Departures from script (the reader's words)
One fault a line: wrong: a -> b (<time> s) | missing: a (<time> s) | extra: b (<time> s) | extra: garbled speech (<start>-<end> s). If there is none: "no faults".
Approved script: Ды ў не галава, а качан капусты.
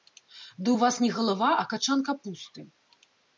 extra: вас (0.8 s)